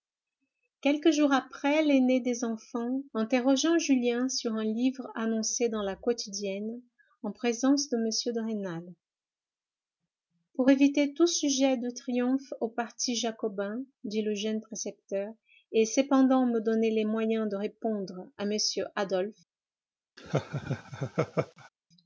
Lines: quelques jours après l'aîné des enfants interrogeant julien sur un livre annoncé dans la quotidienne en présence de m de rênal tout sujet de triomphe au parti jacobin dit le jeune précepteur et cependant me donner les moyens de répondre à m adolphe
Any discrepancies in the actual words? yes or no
yes